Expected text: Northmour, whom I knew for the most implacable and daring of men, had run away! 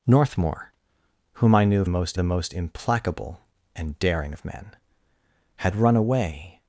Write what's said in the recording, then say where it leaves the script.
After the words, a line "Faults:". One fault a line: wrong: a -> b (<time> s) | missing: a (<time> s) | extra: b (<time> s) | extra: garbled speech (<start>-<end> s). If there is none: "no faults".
Northmour, whom I knew most the most implacable and daring of men, had run away!
Faults:
wrong: for -> most (1.9 s)